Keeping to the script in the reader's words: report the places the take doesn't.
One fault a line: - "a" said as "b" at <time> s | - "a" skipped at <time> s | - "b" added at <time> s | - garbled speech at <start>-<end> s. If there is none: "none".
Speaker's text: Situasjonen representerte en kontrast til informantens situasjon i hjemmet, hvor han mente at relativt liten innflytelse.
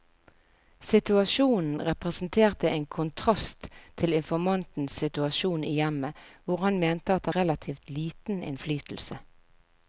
none